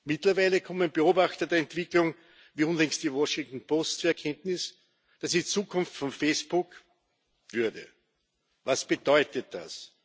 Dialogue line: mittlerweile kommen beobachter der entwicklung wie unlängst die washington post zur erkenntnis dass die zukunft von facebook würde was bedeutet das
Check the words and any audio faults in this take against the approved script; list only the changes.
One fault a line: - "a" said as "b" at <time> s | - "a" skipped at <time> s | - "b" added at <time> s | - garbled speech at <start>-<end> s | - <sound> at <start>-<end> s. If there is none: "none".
none